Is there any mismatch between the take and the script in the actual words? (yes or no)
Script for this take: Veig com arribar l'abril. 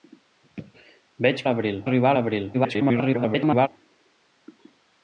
yes